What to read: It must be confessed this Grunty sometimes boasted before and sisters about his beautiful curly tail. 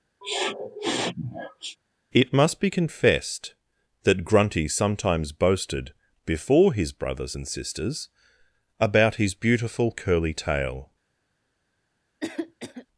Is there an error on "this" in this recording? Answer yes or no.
yes